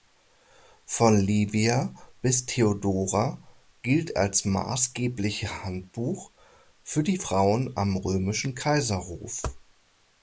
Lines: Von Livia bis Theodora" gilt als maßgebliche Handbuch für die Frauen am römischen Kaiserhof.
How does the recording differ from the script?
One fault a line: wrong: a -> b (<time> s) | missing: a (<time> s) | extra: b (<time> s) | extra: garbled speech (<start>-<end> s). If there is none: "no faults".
no faults